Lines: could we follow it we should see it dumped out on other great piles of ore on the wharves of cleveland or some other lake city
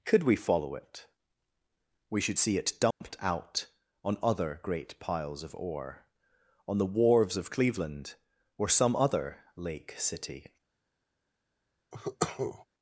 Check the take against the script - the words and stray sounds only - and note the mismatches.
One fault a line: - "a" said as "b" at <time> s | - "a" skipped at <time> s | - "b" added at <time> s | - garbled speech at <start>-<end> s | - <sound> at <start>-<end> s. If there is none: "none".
- dropout at 2.9-3.0 s
- cough at 11.9-12.6 s